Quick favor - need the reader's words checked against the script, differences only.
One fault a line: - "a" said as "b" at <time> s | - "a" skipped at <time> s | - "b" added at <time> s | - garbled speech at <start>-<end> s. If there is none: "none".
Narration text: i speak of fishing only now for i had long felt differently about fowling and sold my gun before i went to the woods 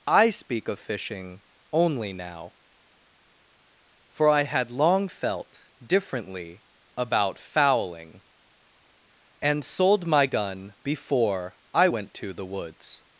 none